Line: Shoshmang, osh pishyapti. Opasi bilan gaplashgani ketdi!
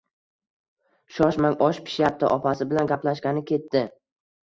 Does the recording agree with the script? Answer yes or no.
yes